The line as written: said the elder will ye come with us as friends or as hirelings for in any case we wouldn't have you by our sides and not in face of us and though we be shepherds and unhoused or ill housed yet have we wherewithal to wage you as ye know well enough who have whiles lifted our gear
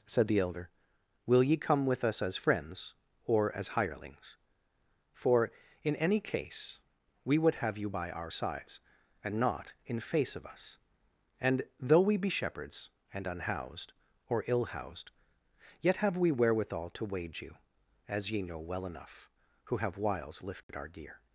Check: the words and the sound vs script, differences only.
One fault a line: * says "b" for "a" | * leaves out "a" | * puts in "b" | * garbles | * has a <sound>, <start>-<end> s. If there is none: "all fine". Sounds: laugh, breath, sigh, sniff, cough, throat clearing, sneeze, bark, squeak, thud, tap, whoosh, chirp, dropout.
* says "would" for "wouldn't"
* has a dropout, 20.6-20.7 s